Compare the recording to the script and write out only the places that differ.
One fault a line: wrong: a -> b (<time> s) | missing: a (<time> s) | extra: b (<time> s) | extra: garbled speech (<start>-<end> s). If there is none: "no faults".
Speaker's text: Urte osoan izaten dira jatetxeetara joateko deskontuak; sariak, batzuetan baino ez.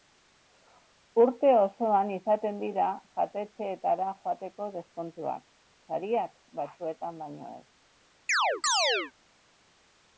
no faults